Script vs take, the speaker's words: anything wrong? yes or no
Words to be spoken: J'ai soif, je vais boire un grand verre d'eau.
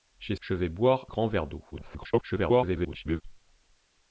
yes